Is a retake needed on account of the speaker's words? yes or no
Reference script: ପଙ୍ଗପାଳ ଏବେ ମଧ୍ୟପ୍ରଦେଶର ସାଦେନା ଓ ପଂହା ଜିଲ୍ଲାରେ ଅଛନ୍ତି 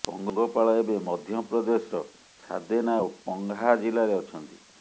no